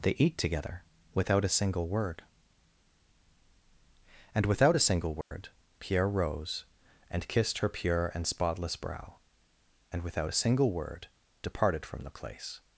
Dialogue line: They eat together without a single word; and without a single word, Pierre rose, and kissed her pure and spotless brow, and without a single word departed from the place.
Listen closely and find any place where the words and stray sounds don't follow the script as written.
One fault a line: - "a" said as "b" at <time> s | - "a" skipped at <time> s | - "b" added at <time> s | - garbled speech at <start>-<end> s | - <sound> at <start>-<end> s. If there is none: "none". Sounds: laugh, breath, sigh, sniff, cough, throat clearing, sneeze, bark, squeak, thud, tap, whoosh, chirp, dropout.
- dropout at 5.2-5.3 s